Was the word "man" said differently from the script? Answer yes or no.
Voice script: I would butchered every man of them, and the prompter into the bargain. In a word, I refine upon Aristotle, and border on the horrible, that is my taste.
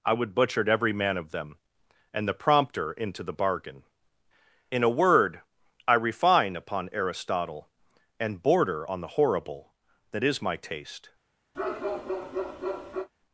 no